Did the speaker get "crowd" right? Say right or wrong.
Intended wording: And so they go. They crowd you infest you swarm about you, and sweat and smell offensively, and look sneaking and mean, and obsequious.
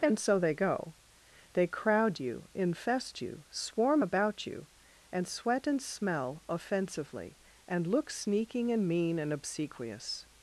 right